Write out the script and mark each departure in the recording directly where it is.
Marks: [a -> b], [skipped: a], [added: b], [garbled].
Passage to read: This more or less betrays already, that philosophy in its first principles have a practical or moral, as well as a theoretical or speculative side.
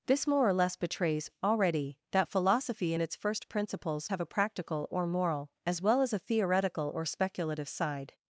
This more or less betrays already, that philosophy in its first principles have a practical or moral, as well as a theoretical or speculative side.